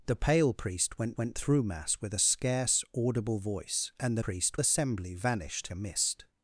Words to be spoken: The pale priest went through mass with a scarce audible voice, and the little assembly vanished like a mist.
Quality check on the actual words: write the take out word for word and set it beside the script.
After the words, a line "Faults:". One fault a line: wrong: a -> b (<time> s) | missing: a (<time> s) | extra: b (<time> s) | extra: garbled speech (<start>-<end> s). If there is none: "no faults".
The pale priest went went through mass with a scarce audible voice, and the priest assembly vanished a mist.
Faults:
extra: went (1.2 s)
wrong: little -> priest (4.2 s)
missing: like (5.7 s)